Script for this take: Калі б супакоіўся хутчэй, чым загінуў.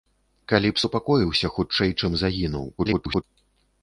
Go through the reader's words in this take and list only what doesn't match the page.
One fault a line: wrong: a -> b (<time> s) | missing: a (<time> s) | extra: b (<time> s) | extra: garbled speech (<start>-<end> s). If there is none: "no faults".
extra: garbled speech (2.8-3.2 s)